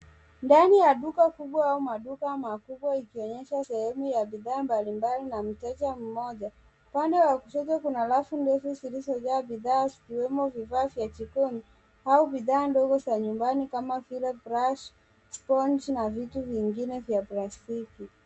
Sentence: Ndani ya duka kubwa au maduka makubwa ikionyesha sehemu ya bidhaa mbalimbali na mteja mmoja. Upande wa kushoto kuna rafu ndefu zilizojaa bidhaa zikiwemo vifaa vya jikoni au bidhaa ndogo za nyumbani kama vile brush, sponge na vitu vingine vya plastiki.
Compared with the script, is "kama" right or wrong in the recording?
right